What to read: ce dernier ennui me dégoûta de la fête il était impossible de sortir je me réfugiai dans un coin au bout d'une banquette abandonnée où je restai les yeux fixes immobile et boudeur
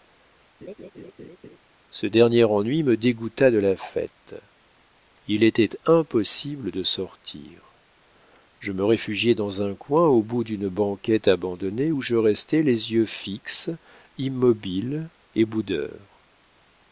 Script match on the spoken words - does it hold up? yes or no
yes